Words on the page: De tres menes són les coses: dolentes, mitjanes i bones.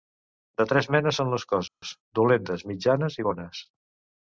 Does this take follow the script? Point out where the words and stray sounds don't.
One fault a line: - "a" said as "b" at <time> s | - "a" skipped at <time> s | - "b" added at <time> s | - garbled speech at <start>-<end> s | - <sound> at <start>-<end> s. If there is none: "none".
- dropout at 1.7-1.8 s